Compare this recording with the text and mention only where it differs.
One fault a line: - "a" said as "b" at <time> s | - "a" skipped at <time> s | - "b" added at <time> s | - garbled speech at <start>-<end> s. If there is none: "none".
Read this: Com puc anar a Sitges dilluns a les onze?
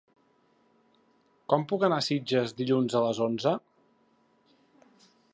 none